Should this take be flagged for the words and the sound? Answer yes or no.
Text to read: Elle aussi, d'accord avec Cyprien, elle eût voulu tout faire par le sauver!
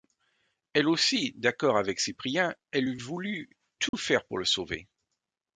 yes